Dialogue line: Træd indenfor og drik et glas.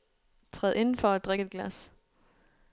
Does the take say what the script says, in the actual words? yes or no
yes